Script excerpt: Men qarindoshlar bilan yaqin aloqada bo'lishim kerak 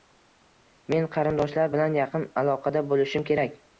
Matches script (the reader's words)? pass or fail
pass